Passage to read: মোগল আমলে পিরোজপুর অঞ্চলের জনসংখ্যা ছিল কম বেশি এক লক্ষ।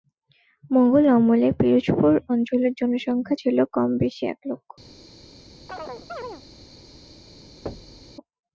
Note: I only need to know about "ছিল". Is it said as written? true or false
true